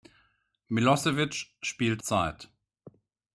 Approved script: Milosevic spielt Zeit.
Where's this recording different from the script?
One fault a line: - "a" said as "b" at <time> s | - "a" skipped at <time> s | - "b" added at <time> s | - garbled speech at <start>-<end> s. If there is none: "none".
none